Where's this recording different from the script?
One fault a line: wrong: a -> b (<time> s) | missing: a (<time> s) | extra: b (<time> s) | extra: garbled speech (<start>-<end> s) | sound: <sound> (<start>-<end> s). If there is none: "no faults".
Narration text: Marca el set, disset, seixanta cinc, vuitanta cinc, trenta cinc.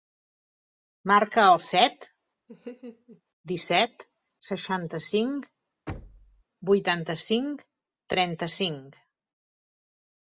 sound: laugh (2.5-3.2 s)
sound: thud (5.9-6.4 s)